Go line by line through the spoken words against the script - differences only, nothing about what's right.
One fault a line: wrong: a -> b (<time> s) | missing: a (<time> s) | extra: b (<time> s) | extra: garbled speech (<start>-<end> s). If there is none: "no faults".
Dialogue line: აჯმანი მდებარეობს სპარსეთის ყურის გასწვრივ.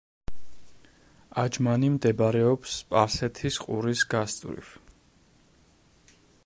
no faults